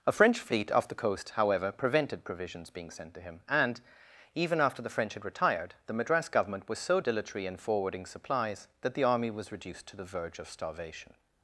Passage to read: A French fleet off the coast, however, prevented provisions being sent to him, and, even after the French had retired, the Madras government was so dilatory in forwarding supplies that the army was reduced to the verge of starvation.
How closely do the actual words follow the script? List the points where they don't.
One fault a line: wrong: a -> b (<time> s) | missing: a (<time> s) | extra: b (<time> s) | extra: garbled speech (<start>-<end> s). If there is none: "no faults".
no faults